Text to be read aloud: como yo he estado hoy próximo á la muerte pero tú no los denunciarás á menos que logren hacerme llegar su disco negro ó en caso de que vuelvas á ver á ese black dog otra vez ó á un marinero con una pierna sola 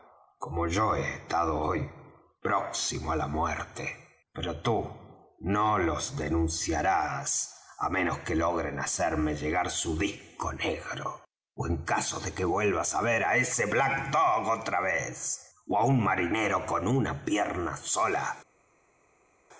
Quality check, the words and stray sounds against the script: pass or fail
pass